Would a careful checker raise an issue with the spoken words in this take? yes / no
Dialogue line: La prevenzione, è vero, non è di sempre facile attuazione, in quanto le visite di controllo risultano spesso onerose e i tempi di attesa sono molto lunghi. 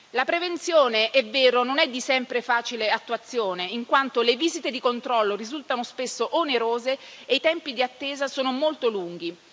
no